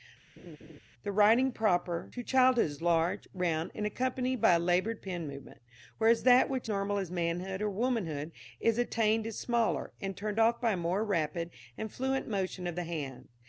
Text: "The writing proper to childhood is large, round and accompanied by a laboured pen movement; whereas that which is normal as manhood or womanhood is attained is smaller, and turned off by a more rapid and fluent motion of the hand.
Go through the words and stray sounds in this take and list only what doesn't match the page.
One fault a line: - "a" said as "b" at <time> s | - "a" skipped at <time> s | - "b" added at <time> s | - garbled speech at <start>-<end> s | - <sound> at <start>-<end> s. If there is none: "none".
- laugh at 0.4-0.8 s
- "is" skipped at 6.7 s